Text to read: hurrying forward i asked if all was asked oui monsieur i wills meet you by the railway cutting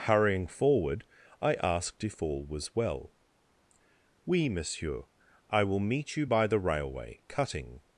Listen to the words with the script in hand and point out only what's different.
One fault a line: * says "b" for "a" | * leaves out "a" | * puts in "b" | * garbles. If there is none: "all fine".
* says "well" for "asked"
* says "will" for "wills"